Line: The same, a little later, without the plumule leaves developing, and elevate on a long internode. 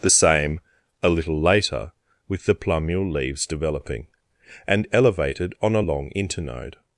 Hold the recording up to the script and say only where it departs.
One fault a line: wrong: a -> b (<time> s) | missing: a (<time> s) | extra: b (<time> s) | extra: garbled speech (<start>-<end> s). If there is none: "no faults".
wrong: without -> with (2.3 s)
wrong: elevate -> elevated (4.9 s)